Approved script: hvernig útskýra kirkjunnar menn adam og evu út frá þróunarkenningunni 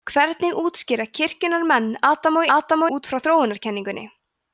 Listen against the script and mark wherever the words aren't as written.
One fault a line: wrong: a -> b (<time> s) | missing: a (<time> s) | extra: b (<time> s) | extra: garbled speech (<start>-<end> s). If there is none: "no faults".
wrong: evu -> adam (2.6 s)